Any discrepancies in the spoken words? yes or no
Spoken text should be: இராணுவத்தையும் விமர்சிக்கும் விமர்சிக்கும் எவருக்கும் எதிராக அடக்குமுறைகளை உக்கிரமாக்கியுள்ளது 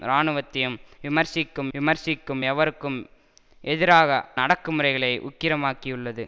no